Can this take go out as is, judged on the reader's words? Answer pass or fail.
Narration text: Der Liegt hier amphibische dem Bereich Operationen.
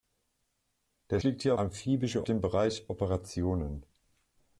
pass